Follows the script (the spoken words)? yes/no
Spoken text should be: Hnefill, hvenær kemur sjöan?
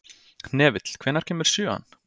yes